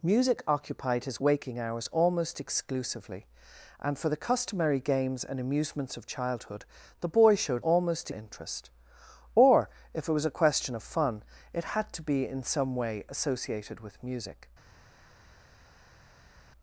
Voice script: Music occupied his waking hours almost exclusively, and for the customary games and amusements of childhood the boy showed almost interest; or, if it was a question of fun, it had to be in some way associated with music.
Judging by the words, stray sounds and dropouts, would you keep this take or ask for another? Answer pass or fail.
pass